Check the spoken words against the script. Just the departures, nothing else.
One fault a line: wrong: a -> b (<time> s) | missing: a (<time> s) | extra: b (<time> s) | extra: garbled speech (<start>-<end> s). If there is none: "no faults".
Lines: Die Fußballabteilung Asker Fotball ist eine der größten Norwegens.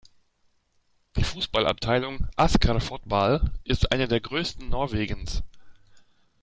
no faults